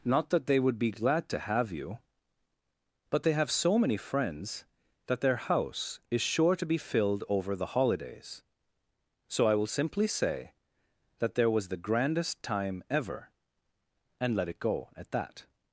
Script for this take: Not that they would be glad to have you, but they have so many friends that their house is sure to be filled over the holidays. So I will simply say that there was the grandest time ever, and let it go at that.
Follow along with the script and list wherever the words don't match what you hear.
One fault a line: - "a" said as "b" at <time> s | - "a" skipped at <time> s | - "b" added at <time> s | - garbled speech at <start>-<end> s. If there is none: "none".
none